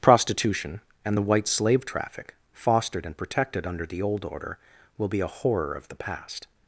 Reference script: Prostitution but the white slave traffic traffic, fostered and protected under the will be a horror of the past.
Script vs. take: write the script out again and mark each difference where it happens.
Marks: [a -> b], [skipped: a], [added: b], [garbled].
Prostitution [but -> and] the white slave traffic [skipped: traffic,] fostered and protected under the [added: old order] will be a horror of the past.